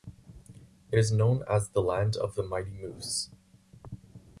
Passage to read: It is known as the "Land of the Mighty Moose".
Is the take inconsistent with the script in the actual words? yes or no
no